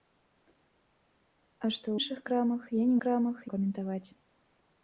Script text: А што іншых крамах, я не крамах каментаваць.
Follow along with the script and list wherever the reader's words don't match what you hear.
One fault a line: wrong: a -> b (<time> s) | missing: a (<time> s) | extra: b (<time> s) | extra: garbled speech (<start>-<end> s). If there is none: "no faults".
no faults